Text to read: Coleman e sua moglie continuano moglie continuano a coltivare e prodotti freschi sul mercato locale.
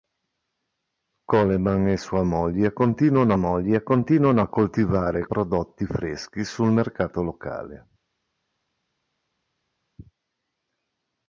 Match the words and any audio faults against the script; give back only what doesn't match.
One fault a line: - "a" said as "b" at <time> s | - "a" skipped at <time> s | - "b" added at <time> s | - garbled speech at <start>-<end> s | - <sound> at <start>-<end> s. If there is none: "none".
none